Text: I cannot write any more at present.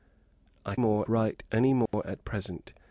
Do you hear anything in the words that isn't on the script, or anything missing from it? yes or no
yes